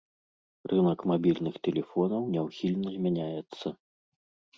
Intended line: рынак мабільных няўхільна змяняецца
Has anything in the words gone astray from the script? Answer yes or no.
yes